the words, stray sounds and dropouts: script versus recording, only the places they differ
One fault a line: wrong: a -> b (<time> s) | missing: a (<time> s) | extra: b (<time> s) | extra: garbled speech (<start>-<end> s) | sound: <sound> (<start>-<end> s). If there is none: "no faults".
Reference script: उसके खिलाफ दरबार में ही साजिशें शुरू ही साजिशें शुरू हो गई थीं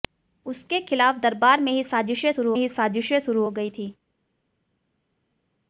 no faults